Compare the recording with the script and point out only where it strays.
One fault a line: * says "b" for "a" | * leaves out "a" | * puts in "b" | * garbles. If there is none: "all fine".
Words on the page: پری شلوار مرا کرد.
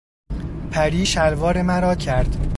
all fine